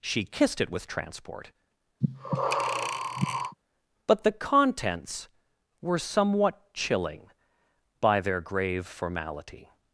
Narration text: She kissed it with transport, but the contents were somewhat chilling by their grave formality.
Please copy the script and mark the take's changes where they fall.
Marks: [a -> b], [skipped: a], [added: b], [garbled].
She kissed it with transport, but the contents were somewhat chilling by their grave formality.